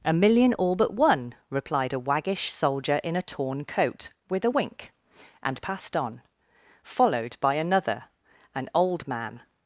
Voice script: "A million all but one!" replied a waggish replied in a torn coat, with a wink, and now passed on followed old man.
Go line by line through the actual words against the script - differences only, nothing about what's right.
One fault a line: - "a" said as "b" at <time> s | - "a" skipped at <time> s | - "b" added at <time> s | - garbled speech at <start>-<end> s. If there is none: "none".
- "replied" said as "soldier" at 2.5 s
- "now" skipped at 5.6 s
- "by another an" added at 7.4 s